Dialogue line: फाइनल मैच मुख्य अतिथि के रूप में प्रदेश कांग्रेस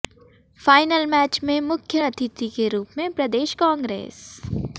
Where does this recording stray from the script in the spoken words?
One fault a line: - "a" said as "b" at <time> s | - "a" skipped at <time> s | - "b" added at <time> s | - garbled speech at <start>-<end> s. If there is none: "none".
- "में" added at 1.4 s